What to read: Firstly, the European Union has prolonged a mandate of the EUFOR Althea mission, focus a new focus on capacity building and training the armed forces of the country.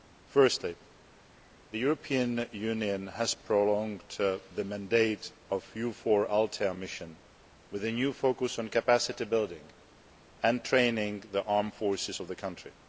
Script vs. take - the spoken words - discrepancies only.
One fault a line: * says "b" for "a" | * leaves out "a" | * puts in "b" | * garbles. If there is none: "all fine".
* says "the" for "a"
* says "with" for "focus"